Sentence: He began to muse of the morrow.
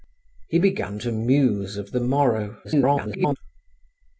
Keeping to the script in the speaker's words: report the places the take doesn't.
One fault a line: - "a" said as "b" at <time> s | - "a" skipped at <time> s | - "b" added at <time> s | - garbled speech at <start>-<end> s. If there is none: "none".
- garbled speech at 2.6-3.4 s